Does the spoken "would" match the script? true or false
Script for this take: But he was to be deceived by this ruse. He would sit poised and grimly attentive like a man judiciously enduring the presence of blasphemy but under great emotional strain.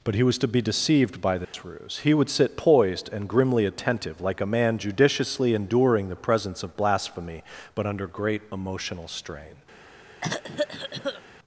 true